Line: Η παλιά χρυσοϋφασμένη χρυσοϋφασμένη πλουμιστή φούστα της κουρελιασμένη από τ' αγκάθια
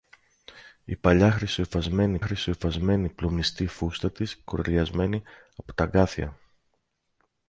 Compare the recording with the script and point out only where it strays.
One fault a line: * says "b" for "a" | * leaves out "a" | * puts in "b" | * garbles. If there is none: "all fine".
all fine